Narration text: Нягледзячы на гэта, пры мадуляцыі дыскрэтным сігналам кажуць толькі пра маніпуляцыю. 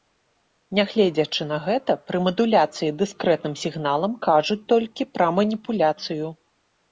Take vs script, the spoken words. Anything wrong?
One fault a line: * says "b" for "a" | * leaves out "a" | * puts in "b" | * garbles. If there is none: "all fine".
all fine